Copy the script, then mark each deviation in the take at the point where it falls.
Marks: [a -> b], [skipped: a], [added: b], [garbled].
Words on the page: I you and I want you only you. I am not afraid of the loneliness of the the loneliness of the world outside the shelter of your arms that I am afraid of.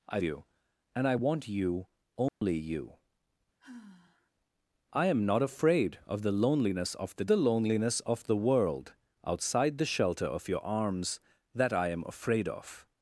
I you and I want you only you. I am not afraid of the loneliness of the the loneliness of the world outside the shelter of your arms that I am afraid of.